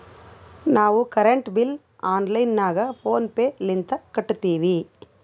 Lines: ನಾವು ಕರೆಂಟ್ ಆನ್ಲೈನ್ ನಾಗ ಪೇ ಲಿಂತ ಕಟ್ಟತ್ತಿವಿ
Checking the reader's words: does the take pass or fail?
fail